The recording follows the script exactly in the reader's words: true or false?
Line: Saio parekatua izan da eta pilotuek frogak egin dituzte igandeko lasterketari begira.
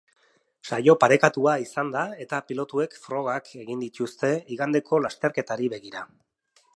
true